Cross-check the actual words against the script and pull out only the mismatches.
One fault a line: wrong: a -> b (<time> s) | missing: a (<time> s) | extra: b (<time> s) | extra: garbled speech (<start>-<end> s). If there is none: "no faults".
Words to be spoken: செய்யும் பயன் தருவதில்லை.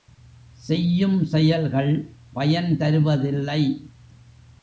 extra: செயல்கள் (1.2 s)